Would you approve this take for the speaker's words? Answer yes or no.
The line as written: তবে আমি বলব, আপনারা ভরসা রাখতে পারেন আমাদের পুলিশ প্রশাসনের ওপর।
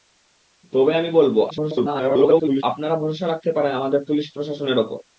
no